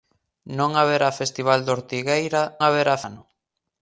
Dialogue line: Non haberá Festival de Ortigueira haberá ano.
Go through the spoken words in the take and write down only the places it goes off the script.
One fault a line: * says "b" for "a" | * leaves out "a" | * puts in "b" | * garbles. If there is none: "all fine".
all fine